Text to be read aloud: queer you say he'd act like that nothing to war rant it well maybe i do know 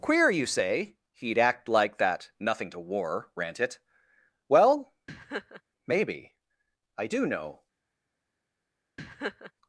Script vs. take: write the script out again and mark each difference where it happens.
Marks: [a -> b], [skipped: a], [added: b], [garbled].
queer you say he'd act like that nothing to war rant it well maybe i do know